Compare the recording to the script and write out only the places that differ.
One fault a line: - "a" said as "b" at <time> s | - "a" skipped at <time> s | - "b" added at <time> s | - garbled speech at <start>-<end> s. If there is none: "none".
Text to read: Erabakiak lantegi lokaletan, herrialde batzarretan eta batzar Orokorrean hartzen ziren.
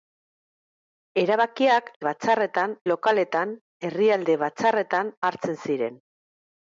- "lantegi" said as "batzarretan" at 2.1 s
- "eta batzar Orokorrean" skipped at 5.1 s